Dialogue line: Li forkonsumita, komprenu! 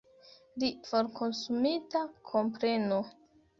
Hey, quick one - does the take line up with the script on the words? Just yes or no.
yes